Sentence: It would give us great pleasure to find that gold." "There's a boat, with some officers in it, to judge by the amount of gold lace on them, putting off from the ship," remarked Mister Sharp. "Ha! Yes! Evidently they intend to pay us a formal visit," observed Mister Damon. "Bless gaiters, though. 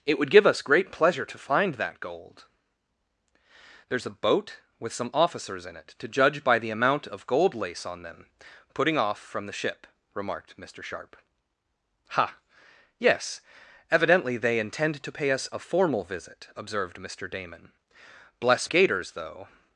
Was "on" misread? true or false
false